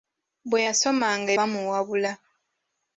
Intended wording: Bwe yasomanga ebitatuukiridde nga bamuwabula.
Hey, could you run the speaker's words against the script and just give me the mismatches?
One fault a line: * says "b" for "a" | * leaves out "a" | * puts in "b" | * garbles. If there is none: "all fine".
* leaves out "ebitatuukiridde nga"